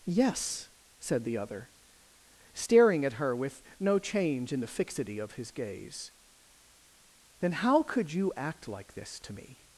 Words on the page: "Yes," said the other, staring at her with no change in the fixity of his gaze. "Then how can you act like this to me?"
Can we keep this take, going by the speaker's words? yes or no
no